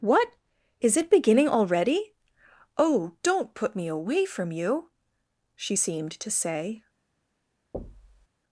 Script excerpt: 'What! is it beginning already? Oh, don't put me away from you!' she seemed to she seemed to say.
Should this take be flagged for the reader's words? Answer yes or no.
yes